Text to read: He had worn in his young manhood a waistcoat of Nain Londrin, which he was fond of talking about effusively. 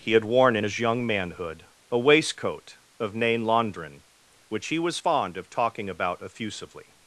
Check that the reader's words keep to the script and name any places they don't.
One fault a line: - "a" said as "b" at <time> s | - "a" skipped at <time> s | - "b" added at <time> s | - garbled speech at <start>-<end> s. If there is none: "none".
none